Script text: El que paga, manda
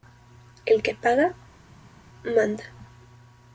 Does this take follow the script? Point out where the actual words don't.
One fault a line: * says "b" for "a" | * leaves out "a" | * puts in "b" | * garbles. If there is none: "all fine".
all fine